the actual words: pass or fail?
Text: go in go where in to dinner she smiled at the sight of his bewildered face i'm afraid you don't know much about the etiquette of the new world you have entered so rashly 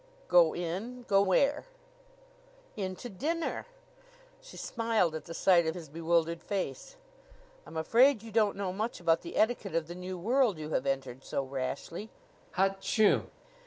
pass